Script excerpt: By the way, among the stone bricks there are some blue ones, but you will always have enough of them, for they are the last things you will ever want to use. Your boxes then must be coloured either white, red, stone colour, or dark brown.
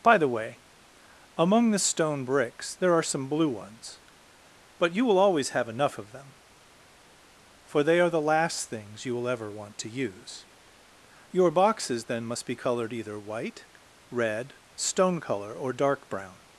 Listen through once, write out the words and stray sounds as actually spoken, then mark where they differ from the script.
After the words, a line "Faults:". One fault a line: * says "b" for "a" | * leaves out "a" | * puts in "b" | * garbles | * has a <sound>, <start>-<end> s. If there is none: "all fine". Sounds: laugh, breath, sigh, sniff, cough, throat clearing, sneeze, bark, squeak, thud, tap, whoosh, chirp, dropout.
By the way, among the stone bricks there are some blue ones, but you will always have enough of them, for they are the last things you will ever want to use. Your boxes then must be coloured either white, red, stone colour, or dark brown.
Faults:
all fine